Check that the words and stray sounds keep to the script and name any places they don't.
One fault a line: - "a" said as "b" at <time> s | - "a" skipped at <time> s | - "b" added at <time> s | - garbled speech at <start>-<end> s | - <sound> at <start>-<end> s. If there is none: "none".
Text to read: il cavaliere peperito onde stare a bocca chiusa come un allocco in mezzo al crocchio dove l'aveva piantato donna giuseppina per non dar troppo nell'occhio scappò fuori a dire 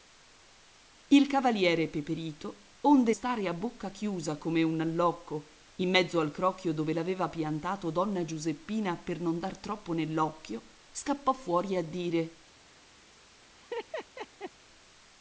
- laugh at 13.6-14.5 s